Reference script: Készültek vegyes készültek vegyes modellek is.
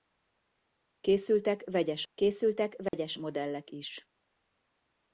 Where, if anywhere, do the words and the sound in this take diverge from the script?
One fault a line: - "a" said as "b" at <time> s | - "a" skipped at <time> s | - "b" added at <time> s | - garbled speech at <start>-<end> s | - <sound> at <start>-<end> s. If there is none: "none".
- dropout at 2.9-2.9 s